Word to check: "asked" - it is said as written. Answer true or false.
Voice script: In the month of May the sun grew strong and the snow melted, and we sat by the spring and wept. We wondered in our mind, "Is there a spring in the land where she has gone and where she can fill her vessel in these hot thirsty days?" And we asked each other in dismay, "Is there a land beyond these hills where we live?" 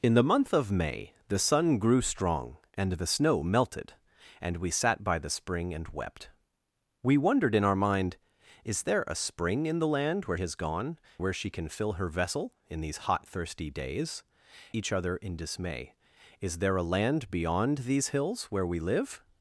false